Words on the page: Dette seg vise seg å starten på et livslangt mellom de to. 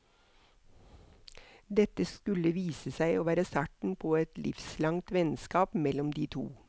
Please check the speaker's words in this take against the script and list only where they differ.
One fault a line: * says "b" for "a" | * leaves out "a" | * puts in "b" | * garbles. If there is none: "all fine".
* says "skulle" for "seg"
* puts in "være"
* puts in "vennskap"